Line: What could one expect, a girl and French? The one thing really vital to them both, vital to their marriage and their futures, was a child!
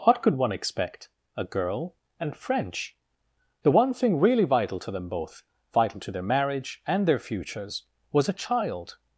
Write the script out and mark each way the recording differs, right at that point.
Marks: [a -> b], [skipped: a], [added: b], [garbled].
What could one expect, a girl and French? The one thing really vital to them both, vital to their marriage and their futures, was a child!